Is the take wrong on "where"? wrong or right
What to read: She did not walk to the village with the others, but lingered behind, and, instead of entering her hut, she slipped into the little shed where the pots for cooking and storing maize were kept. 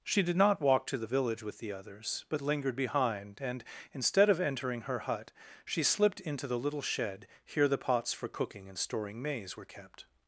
wrong